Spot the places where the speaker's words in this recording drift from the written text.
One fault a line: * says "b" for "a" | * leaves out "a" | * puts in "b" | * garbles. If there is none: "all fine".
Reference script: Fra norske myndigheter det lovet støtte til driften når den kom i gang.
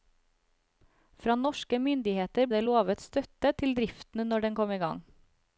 all fine